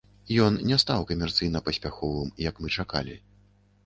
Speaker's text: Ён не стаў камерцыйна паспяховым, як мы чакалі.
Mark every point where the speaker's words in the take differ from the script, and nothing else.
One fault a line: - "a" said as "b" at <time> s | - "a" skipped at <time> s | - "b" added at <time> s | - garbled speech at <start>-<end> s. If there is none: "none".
none